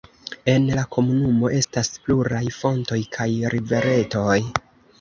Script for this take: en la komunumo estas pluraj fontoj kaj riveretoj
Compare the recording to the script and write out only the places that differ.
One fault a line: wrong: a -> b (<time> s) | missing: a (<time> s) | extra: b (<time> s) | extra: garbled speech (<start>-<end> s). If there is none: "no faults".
no faults